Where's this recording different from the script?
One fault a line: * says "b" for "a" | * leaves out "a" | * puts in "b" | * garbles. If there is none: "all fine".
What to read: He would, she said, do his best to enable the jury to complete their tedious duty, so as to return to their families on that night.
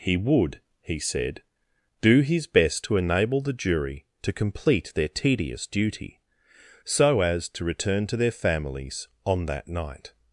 * says "he" for "she"